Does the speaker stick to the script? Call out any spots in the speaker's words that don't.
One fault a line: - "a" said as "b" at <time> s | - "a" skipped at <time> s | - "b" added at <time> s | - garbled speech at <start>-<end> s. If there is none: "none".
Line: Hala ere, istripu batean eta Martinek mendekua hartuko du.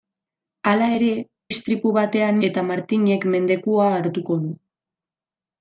none